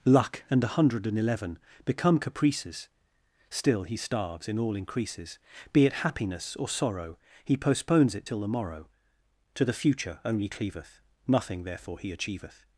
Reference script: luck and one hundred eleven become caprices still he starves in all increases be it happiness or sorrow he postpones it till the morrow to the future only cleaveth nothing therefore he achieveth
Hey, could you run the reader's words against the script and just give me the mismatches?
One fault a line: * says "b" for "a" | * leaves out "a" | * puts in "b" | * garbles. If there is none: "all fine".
* says "a" for "one"
* puts in "and"